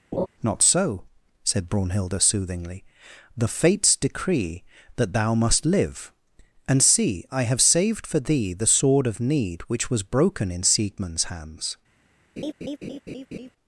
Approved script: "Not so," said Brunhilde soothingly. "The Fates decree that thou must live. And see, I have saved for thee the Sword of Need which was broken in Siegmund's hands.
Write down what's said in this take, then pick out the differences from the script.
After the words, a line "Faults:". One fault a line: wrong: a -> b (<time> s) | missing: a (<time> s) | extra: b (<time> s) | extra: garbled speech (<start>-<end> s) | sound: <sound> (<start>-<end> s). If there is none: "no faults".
"Not so," said Brunhilde soothingly. "The Fates decree that thou must live. And see, I have saved for thee the Sword of Need which was broken in Siegmund's hands.
Faults:
sound: laugh (0.1-0.3 s)
sound: laugh (12.4-13.5 s)